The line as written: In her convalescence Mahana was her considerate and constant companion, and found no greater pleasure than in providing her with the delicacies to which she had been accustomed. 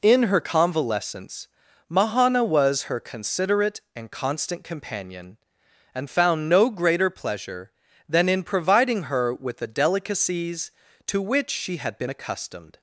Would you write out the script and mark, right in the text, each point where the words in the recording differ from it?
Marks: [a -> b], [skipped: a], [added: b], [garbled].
In her convalescence Mahana was her considerate and constant companion, and found no greater pleasure than in providing her with the delicacies to which she had been accustomed.